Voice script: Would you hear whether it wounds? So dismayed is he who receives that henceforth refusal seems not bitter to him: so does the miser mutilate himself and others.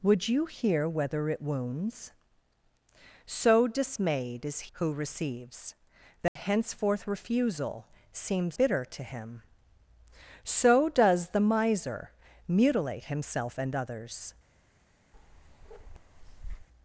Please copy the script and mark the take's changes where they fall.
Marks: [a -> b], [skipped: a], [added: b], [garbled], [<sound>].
Would you hear whether it wounds? So dismayed is [skipped: he] who receives that [dropout] henceforth refusal seems [skipped: not] bitter to him: so does the miser mutilate himself and others. [bark]